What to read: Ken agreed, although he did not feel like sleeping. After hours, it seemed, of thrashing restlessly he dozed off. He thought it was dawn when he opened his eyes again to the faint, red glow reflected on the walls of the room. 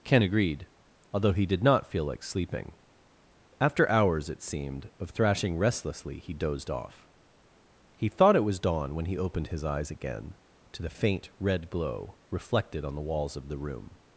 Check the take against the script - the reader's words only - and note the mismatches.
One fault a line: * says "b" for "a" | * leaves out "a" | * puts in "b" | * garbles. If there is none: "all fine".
all fine